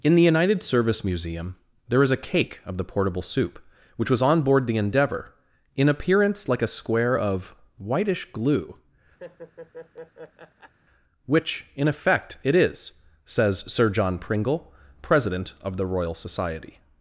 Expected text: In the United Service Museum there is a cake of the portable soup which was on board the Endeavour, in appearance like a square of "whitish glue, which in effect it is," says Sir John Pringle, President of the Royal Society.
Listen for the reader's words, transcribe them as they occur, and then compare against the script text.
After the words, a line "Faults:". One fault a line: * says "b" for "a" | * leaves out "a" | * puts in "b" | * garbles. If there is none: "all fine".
In the United Service Museum there is a cake of the portable soup which was on board the Endeavour, in appearance like a square of "whitish glue, which in effect it is," says Sir John Pringle, President of the Royal Society.
Faults:
all fine